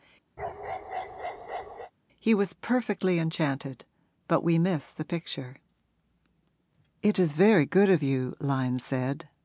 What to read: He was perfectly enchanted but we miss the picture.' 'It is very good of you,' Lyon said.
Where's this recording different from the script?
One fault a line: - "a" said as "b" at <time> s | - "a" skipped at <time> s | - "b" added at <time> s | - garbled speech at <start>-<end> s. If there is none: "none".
none